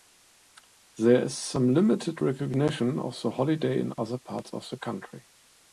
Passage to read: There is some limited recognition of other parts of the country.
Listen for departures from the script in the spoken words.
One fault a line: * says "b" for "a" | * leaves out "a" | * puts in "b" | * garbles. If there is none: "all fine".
* puts in "the holiday in"